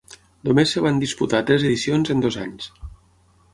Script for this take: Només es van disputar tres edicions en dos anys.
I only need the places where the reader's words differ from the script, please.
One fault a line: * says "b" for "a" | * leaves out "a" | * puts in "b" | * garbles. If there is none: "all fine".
all fine